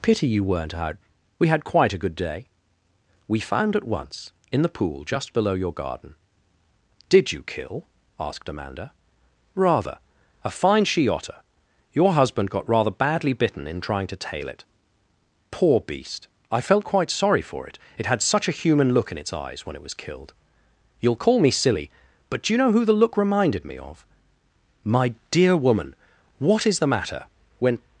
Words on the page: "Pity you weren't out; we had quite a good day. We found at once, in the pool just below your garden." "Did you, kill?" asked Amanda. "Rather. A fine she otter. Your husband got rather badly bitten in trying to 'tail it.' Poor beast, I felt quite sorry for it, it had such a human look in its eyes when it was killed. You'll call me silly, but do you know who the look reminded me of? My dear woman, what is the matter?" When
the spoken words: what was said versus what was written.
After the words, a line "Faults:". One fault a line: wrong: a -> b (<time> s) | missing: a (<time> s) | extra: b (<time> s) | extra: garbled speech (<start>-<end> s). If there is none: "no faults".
"Pity you weren't out; we had quite a good day. We found at once, in the pool just below your garden." "Did you, kill?" asked Amanda. "Rather. A fine she otter. Your husband got rather badly bitten in trying to 'tail it.' Poor beast, I felt quite sorry for it, it had such a human look in its eyes when it was killed. You'll call me silly, but do you know who the look reminded me of? My dear woman, what is the matter?" When
Faults:
no faults